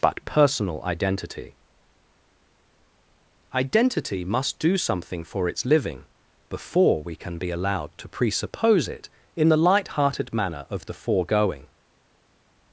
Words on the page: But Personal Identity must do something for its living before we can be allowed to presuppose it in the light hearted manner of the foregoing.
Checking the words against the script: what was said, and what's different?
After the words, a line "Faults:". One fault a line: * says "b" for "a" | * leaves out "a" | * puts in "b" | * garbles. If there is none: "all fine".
But Personal Identity Identity must do something for its living before we can be allowed to presuppose it in the light hearted manner of the foregoing.
Faults:
* puts in "Identity"